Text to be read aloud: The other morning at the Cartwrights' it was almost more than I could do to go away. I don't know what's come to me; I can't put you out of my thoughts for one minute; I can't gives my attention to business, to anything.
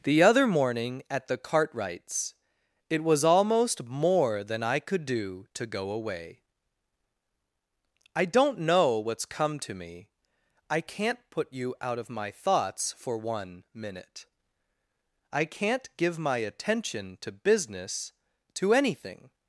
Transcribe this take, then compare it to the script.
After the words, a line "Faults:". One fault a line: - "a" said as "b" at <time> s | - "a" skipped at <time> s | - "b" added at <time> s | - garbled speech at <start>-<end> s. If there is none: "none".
The other morning at the Cartwrights' it was almost more than I could do to go away. I don't know what's come to me; I can't put you out of my thoughts for one minute; I can't give my attention to business, to anything.
Faults:
- "gives" said as "give" at 16.0 s